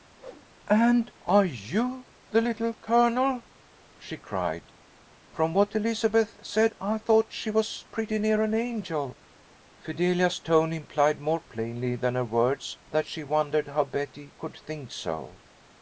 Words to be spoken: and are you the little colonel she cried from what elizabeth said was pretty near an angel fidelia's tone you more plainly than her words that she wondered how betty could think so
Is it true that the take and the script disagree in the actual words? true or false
true